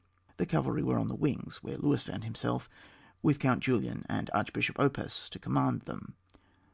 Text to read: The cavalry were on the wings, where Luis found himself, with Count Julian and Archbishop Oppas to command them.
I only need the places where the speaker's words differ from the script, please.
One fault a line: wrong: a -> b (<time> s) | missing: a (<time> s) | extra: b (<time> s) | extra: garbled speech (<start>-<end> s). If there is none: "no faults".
no faults